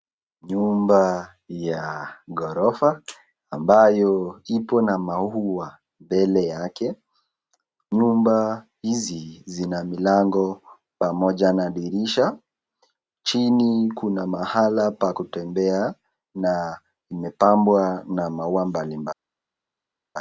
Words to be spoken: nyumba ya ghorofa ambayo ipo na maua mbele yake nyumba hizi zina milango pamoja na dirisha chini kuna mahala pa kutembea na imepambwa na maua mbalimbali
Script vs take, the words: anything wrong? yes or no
no